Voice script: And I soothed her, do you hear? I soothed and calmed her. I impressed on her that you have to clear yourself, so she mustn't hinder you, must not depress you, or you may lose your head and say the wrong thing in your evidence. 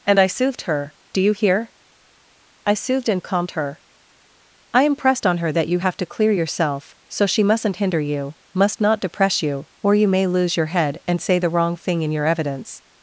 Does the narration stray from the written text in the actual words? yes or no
no